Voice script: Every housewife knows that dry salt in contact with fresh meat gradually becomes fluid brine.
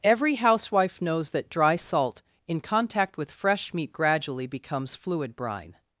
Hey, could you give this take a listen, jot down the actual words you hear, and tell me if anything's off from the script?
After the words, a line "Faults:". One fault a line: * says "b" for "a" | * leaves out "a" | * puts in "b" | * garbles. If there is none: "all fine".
Every housewife knows that dry salt in contact with fresh meat gradually becomes fluid brine.
Faults:
all fine